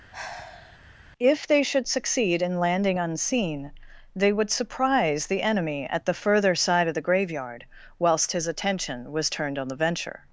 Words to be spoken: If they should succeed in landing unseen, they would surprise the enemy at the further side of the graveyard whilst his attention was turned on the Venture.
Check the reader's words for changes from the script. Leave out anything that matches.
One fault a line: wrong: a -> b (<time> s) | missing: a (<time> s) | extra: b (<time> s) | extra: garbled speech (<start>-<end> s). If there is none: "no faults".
no faults